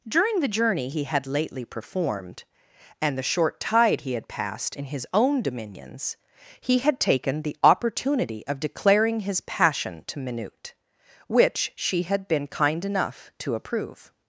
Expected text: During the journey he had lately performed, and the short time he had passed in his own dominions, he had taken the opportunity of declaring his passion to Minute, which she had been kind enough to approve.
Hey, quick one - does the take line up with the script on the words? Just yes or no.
no